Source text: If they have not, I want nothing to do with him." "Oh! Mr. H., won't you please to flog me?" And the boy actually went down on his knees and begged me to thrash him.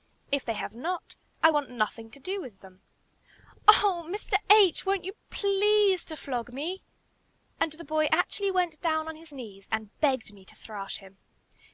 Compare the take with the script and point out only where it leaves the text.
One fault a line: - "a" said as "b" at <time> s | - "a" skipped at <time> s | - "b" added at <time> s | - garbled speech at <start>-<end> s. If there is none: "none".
- "him" said as "them" at 2.6 s